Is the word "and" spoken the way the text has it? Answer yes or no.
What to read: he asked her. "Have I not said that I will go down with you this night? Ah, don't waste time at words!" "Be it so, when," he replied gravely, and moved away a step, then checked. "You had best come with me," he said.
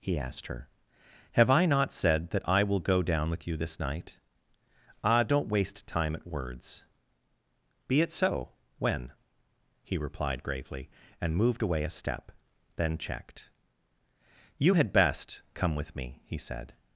yes